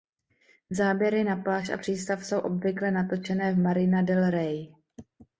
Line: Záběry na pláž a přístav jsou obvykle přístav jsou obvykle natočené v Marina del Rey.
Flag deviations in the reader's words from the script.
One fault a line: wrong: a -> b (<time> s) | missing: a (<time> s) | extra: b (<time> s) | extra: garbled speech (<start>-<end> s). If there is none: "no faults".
missing: přístav jsou obvykle (2.9 s)